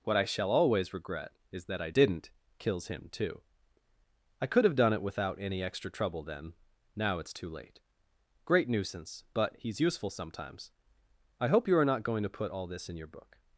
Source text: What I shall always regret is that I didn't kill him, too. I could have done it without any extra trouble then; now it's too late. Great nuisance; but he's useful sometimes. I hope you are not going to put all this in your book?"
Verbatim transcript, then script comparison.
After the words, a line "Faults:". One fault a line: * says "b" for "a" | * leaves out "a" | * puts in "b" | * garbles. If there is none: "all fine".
What I shall always regret is that I didn't kills him, too. I could have done it without any extra trouble then; now it's too late. Great nuisance; but he's useful sometimes. I hope you are not going to put all this in your book?"
Faults:
* says "kills" for "kill"